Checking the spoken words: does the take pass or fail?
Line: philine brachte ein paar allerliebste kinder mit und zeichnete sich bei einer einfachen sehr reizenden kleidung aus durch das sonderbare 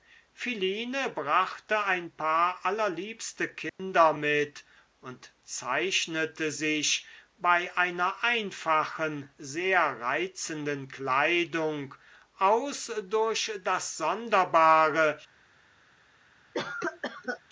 pass